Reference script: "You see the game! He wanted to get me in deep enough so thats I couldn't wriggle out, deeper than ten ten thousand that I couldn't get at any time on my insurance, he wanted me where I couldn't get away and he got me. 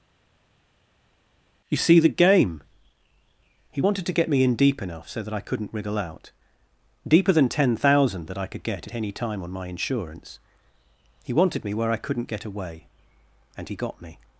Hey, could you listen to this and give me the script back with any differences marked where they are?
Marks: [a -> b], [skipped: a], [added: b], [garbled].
"You see the game! He wanted to get me in deep enough so [thats -> that] I couldn't wriggle out, deeper than ten [skipped: ten] thousand that I [couldn't -> could] get at any time on my insurance, he wanted me where I couldn't get away and he got me.